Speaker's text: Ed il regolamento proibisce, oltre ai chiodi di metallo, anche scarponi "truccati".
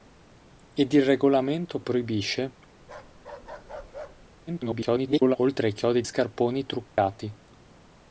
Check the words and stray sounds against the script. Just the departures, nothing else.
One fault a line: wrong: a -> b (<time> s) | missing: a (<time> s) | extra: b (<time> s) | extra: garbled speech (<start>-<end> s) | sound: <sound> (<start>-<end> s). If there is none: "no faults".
sound: bark (2.8-4.3 s)
extra: garbled speech (4.5-5.4 s)
missing: di metallo anche (6.0 s)
sound: dropout (6.9-7.0 s)